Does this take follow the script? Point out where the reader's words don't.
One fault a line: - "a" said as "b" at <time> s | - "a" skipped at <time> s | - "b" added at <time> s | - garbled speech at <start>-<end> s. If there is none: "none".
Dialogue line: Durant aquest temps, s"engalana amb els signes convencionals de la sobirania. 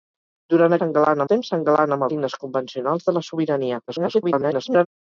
- "aquest" said as "s"engalana" at 0.8 s
- "els" skipped at 2.1 s
- garbled speech at 3.9-4.9 s